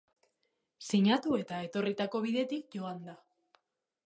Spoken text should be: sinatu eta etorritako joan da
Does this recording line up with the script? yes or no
no